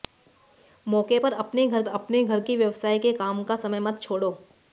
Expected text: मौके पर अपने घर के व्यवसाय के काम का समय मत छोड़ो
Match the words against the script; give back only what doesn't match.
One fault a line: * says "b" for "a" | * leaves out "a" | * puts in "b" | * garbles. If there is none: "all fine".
* puts in "अपने घर"